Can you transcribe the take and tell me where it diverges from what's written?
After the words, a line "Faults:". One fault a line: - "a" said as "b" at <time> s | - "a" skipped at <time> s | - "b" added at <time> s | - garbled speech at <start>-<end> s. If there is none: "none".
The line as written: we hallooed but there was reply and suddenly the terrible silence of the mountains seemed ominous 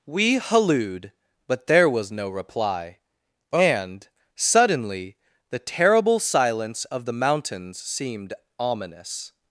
we hallooed but there was no reply and suddenly the terrible silence of the mountains seemed ominous
Faults:
- "no" added at 2.1 s